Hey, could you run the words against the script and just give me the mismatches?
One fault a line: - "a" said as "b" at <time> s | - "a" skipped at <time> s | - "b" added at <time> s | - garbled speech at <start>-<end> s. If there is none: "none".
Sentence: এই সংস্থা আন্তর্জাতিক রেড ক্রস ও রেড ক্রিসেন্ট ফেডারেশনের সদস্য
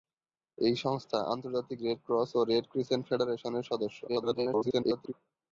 - garbled speech at 4.1-5.1 s